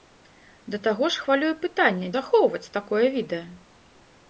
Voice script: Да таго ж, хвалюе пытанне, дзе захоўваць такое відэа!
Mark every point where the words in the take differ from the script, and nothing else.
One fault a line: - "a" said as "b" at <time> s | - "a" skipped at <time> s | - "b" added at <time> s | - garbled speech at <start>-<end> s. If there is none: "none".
- "дзе" skipped at 2.1 s